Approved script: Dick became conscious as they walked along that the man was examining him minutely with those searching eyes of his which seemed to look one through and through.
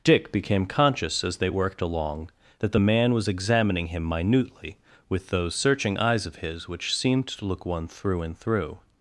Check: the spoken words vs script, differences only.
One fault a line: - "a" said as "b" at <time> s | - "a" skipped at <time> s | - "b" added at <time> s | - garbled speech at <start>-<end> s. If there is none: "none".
- "walked" said as "worked" at 1.5 s